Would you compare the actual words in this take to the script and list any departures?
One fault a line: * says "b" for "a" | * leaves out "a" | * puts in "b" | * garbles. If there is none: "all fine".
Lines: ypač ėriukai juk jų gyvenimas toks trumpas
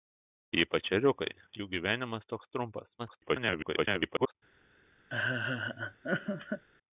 * leaves out "juk"
* garbles